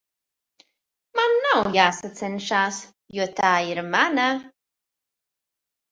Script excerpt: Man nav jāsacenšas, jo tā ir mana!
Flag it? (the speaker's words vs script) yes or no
no